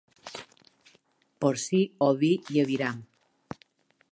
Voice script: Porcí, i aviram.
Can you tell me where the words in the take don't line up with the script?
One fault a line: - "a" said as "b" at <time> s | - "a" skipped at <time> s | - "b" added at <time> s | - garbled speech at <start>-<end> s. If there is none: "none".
- "oví" added at 2.1 s